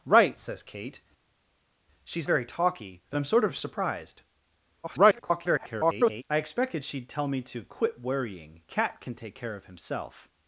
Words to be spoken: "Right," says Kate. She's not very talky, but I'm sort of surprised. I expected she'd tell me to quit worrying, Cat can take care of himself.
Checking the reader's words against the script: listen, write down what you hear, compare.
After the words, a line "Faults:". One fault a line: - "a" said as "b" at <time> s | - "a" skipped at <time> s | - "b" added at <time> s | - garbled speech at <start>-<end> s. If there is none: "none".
"Right," says Kate. She's very talky, but I'm sort of surprised. [garbled] I expected she'd tell me to quit worrying, Cat can take care of himself.
Faults:
- "not" skipped at 2.3 s
- garbled speech at 4.8-6.2 s